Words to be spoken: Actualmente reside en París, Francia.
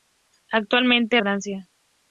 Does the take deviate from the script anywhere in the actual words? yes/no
yes